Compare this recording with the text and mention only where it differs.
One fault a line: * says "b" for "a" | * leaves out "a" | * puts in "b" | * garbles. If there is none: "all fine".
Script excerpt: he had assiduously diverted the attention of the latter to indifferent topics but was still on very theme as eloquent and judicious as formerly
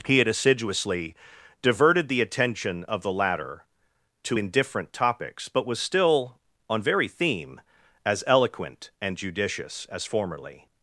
all fine